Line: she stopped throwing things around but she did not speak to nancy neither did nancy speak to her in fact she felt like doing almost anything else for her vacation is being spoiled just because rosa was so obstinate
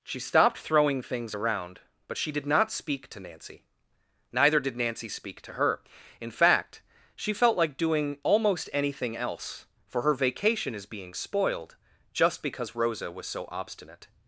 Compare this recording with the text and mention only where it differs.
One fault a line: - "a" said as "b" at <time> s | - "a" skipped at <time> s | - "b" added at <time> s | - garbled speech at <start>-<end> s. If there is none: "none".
none